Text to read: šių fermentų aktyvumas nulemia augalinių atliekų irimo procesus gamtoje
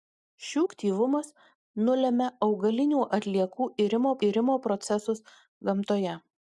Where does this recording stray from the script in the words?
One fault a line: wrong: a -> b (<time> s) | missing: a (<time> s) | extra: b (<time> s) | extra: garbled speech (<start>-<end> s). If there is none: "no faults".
missing: fermentų (0.6 s)
extra: irimo (4.3 s)